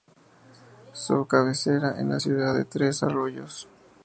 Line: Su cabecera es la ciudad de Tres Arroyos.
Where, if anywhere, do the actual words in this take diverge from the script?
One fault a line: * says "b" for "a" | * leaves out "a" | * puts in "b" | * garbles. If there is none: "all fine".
all fine